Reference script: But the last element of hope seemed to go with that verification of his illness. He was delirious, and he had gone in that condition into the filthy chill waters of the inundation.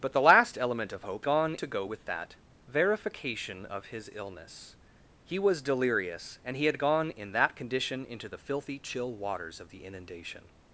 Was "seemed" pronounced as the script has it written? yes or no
no